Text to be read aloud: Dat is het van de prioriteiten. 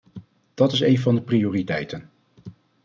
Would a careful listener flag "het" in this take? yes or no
yes